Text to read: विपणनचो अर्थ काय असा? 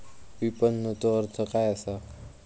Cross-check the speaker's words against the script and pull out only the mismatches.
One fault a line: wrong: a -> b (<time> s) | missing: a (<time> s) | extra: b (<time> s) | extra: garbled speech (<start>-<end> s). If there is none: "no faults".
no faults